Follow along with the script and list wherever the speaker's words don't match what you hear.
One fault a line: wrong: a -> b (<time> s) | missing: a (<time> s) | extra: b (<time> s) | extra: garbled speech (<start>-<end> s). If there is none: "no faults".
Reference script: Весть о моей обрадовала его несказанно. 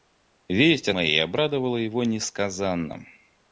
no faults